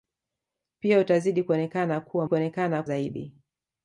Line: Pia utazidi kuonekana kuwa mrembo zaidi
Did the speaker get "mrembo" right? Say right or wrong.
wrong